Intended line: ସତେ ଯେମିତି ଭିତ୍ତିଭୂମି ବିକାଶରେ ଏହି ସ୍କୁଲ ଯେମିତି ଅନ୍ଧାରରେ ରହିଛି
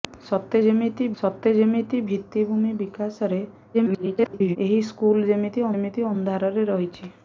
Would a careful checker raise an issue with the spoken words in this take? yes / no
yes